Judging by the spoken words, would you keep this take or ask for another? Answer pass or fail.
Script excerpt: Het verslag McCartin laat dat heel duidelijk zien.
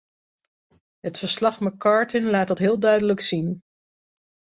pass